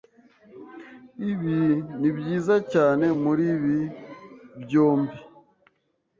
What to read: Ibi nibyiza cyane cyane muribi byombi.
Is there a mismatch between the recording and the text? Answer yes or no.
yes